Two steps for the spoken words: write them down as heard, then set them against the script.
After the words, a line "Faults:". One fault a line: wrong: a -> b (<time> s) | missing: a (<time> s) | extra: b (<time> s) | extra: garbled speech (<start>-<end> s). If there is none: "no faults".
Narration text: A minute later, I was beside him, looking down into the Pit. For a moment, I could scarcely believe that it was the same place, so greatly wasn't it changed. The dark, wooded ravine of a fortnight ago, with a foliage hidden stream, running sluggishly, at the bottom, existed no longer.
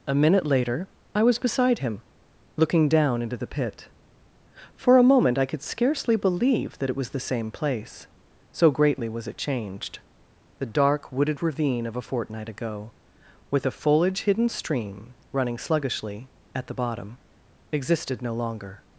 A minute later, I was beside him, looking down into the Pit. For a moment, I could scarcely believe that it was the same place, so greatly was it changed. The dark, wooded ravine of a fortnight ago, with a foliage hidden stream, running sluggishly, at the bottom, existed no longer.
Faults:
wrong: wasn't -> was (9.1 s)